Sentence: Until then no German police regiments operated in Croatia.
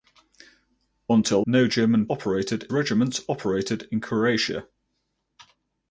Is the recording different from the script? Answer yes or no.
yes